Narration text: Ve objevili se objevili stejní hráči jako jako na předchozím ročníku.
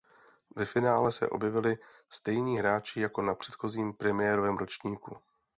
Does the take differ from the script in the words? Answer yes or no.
yes